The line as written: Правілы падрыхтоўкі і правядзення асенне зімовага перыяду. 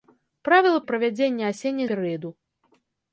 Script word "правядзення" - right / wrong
right